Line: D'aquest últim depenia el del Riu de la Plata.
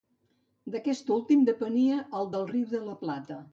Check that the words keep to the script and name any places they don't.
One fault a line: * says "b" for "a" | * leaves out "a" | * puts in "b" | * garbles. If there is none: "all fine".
all fine